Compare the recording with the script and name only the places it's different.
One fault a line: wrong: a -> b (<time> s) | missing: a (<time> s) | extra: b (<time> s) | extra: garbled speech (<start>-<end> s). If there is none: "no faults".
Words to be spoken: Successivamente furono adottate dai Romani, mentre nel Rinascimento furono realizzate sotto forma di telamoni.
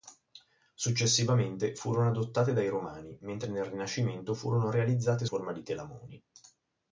missing: sotto (5.2 s)